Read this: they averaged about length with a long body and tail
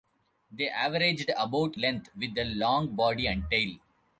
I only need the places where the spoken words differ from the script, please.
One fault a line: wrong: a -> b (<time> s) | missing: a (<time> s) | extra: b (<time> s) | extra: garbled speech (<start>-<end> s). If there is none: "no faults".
no faults